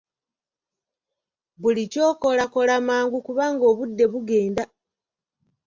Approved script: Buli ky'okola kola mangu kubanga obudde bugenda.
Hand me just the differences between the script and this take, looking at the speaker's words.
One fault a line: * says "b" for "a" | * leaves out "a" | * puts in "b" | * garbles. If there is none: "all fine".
all fine